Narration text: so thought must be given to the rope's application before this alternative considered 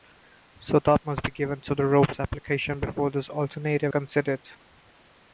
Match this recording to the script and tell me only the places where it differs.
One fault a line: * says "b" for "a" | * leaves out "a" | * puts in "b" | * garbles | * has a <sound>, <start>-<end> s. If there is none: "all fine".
all fine